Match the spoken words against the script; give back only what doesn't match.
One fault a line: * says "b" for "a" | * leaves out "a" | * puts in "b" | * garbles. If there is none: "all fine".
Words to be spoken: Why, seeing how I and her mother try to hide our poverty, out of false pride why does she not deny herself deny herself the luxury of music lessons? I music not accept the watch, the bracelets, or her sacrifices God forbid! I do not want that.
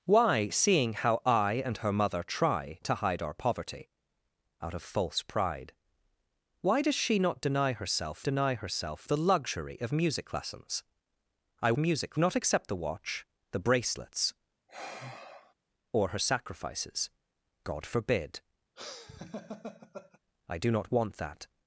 all fine